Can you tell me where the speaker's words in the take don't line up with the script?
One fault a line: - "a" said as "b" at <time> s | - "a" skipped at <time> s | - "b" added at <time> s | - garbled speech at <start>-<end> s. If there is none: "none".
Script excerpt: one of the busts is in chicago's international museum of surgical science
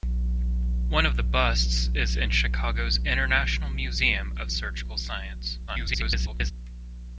- garbled speech at 5.7-6.5 s